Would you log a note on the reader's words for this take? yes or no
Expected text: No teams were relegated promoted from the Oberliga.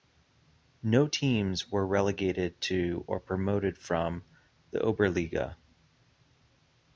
yes